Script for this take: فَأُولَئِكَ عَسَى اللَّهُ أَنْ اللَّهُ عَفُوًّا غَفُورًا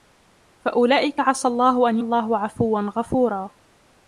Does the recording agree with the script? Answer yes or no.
yes